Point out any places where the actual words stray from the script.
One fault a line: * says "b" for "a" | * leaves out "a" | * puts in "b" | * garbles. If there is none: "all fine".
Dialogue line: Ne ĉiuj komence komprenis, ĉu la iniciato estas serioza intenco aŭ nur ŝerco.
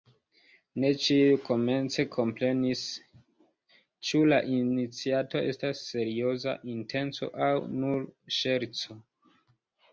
all fine